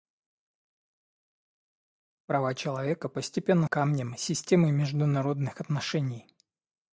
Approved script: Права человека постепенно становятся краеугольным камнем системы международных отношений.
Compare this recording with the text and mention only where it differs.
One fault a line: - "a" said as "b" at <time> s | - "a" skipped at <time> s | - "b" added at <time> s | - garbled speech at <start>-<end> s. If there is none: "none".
- "становятся краеугольным" skipped at 3.7 s